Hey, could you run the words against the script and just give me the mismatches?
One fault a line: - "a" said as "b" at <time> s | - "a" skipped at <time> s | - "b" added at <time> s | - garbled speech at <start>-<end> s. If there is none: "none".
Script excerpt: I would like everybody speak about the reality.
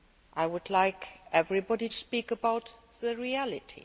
none